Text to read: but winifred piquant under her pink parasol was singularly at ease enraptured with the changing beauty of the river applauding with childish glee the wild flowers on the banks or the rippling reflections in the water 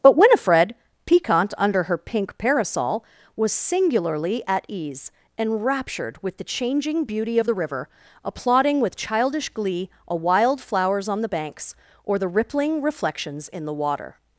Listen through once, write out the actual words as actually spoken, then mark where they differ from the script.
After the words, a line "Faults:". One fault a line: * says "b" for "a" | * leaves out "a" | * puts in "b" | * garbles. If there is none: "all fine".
but winifred piquant under her pink parasol was singularly at ease enraptured with the changing beauty of the river applauding with childish glee a wild flowers on the banks or the rippling reflections in the water
Faults:
* says "a" for "the"